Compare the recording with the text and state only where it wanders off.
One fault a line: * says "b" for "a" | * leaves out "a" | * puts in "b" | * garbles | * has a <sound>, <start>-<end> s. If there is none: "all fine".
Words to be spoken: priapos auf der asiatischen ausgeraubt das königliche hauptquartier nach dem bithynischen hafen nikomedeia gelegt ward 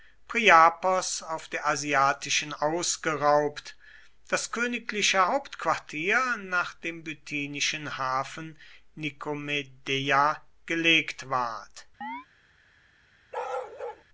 * has a chirp, 12.0-12.3 s
* has a bark, 13.3-14.0 s